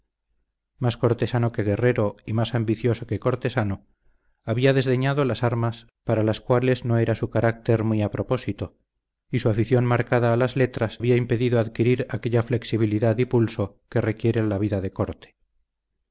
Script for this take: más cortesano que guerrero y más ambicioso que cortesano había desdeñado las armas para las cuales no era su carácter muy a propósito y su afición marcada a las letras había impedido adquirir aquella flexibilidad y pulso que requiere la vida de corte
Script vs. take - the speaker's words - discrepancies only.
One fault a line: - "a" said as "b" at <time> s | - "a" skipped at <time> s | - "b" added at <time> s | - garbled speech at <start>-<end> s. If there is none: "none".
none